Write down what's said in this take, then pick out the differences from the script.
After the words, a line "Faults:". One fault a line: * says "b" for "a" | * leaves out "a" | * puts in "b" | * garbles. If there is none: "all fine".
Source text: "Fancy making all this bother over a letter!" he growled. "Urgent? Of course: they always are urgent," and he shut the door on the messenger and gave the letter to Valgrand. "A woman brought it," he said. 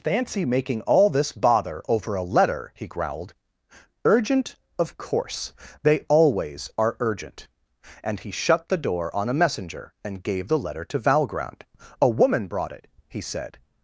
"Fancy making all this bother over a letter!" he growled. "Urgent? Of course: they always are urgent," and he shut the door on a messenger and gave the letter to Valgrand. "A woman brought it," he said.
Faults:
* says "a" for "the"